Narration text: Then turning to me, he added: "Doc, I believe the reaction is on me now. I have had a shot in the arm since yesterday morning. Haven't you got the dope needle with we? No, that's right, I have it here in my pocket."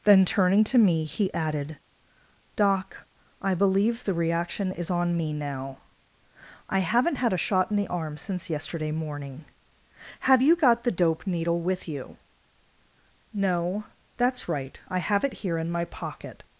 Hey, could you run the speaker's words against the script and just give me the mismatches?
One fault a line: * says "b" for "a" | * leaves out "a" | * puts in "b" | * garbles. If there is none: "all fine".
* says "haven't" for "have"
* says "Have" for "Haven't"
* says "you" for "we"